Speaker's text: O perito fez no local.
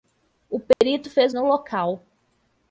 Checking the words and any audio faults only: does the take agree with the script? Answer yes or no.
no